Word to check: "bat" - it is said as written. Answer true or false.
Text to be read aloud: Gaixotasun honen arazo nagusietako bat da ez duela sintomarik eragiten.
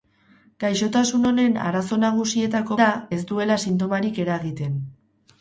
false